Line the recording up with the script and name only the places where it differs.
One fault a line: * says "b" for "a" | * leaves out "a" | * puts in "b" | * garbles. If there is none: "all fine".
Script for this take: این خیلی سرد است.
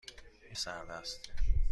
* leaves out "خیلی"